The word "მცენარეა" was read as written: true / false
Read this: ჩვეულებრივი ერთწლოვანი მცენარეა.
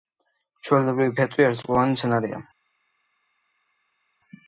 true